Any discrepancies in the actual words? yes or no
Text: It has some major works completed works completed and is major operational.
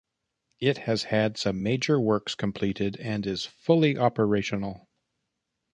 yes